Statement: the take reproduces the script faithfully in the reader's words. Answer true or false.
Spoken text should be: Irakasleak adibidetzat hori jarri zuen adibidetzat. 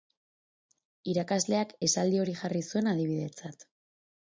false